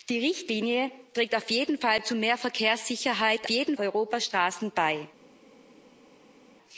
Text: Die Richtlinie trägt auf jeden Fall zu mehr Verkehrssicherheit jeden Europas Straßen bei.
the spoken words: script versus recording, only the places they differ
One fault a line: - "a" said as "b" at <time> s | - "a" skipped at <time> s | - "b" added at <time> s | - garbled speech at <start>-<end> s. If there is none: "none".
none